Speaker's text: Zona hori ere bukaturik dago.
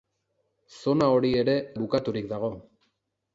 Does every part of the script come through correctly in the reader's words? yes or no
yes